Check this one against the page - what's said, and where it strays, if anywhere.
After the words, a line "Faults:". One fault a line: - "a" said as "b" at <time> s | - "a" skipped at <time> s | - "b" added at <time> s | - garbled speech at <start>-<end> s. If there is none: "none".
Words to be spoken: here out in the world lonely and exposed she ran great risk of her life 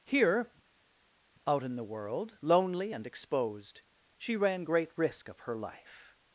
here out in the world lonely and exposed she ran great risk of her life
Faults:
none